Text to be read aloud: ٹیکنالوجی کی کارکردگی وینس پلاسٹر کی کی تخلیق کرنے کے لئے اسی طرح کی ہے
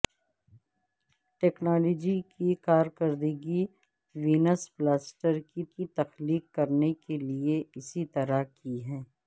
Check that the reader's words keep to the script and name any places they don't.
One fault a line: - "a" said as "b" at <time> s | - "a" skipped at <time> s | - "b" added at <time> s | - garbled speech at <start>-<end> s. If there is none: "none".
none